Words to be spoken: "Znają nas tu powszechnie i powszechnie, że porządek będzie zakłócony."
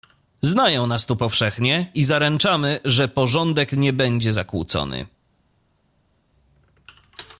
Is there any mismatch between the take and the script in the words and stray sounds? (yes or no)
yes